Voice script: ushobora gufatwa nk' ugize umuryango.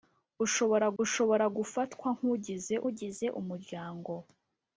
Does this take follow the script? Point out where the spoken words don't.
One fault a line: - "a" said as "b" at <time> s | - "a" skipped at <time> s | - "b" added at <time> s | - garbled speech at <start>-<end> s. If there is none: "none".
- "ushobora" added at 1.0 s
- "ugize" added at 2.9 s